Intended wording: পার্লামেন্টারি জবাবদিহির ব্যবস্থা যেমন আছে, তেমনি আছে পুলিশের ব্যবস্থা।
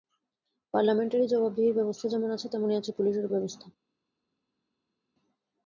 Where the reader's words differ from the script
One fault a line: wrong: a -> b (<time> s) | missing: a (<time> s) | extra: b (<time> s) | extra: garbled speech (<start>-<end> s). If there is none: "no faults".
no faults